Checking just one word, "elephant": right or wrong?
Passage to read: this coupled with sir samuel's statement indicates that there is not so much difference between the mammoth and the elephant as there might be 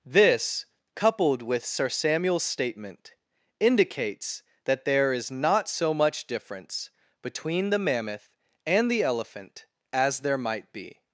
right